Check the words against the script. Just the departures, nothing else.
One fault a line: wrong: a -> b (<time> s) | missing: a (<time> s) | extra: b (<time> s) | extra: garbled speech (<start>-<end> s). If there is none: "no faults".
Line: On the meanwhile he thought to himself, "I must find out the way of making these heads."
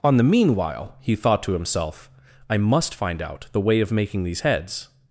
no faults